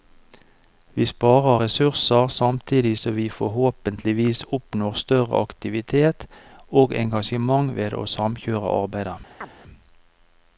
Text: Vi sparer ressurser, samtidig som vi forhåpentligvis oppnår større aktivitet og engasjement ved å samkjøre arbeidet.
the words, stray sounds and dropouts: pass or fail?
fail